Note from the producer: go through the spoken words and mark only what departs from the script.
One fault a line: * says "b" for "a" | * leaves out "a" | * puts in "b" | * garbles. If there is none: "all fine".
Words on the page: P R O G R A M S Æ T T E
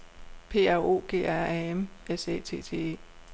all fine